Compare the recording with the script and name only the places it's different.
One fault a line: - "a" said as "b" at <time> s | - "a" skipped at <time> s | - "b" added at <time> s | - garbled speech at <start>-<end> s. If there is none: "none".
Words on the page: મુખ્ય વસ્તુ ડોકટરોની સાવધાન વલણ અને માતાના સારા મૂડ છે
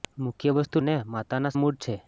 - "ડોકટરોની સાવધાન વલણ" skipped at 0.8 s
- "સારા" skipped at 1.5 s